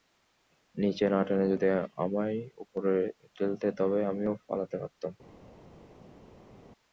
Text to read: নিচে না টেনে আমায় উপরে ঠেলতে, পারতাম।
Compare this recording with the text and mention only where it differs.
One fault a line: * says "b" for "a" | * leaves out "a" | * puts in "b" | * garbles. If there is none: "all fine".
* puts in "যদি"
* puts in "তবে আমিও পালাতে"